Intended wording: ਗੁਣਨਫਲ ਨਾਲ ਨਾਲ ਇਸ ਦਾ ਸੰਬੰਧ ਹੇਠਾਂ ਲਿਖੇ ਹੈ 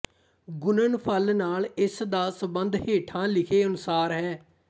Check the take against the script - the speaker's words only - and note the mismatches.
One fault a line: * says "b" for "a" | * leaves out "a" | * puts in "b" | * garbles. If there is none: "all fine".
* leaves out "ਨਾਲ"
* puts in "ਅਨੁਸਾਰ"